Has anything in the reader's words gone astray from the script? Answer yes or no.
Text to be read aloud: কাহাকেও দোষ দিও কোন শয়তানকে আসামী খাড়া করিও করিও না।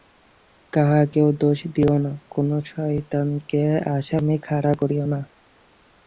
yes